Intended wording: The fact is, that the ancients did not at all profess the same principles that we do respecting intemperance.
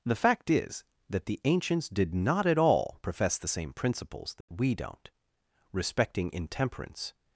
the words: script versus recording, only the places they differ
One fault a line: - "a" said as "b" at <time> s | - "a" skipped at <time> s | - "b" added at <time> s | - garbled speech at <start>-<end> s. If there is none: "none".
- "do" said as "don't" at 4.7 s